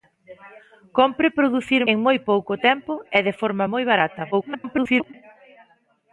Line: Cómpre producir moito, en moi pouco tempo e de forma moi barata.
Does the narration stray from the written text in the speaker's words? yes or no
yes